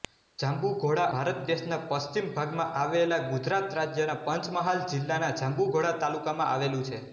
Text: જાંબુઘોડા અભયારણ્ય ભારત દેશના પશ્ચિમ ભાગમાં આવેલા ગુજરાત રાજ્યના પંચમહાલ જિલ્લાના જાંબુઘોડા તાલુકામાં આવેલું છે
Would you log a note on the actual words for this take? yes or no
yes